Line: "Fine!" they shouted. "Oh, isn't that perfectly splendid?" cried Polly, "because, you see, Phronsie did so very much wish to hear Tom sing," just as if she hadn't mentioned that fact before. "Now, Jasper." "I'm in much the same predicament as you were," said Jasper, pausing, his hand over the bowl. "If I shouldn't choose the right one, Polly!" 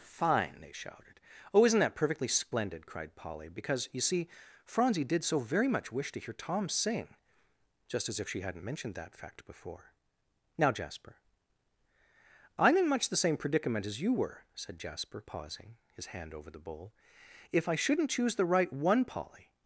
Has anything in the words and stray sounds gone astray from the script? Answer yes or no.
no